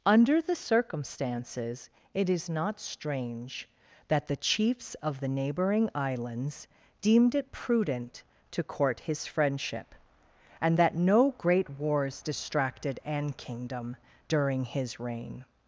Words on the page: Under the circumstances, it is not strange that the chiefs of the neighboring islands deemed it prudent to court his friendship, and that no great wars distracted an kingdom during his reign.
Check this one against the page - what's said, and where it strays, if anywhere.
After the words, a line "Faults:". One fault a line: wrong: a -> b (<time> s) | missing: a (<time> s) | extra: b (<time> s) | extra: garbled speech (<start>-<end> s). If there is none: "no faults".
Under the circumstances, it is not strange that the chiefs of the neighboring islands deemed it prudent to court his friendship, and that no great wars distracted an kingdom during his reign.
Faults:
no faults